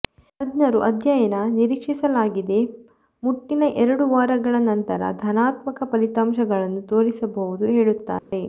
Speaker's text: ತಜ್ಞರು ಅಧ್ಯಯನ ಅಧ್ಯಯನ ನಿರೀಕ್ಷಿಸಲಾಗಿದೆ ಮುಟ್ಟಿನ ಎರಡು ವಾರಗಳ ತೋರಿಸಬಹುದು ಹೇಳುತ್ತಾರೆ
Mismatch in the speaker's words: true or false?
true